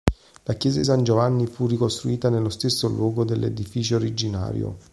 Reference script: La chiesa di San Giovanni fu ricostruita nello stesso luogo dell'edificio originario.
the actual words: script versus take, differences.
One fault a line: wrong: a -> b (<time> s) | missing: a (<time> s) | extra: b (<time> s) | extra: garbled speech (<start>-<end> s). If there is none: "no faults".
no faults